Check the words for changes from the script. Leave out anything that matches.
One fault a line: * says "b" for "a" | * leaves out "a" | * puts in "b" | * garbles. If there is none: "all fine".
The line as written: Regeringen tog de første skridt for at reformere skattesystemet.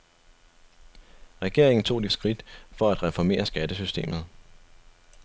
* leaves out "første"